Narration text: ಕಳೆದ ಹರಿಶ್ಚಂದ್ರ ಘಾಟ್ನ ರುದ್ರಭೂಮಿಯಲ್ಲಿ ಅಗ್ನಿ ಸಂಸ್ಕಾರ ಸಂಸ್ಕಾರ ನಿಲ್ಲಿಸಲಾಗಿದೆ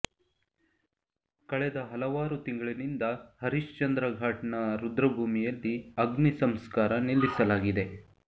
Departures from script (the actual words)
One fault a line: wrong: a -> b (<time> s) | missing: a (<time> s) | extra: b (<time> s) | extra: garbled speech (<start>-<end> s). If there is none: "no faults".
extra: ಹಲವಾರು ತಿಂಗಳಿನಿಂದ (1.9 s)
missing: ಸಂಸ್ಕಾರ (6.9 s)